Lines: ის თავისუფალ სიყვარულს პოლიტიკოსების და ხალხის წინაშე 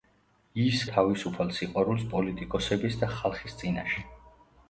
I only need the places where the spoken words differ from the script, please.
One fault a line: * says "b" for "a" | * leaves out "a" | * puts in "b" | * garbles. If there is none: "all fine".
all fine